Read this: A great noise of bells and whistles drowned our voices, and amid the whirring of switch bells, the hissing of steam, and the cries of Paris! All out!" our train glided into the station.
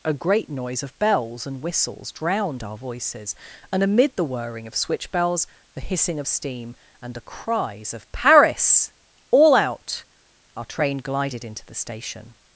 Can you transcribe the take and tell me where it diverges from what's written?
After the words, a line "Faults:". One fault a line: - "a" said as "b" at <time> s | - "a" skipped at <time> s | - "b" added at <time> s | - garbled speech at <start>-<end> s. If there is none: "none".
A great noise of bells and whistles drowned our voices, and amid the whirring of switch bells, the hissing of steam, and the cries of Paris! All out!" our train glided into the station.
Faults:
none